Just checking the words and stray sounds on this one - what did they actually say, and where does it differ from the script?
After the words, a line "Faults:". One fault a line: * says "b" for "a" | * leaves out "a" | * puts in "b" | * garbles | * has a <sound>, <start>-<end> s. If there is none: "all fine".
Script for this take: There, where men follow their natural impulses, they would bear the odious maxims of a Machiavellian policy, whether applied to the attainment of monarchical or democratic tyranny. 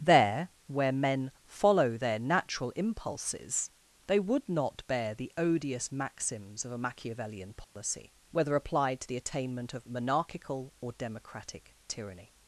There, where men follow their natural impulses, they would not bear the odious maxims of a Machiavellian policy, whether applied to the attainment of monarchical or democratic tyranny.
Faults:
* puts in "not"
* has a dropout, 7.6-7.8 s